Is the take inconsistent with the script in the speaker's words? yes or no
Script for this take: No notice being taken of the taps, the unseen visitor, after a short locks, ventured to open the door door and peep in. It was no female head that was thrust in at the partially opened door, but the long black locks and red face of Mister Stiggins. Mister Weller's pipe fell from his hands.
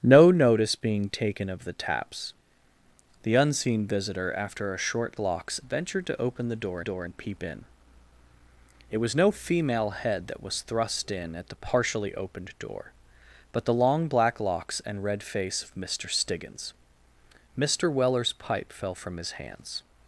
no